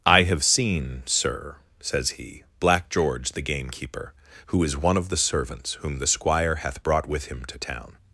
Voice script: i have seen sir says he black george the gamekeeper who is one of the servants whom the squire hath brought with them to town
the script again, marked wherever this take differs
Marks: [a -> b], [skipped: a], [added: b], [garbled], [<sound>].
i have seen sir says he black george the gamekeeper who is one of the servants whom the squire hath brought with [them -> him] to town